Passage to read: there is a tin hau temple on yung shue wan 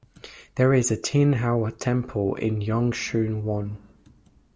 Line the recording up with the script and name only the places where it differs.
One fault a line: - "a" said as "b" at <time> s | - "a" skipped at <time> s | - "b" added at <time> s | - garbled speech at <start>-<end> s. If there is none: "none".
- "on" said as "in" at 2.3 s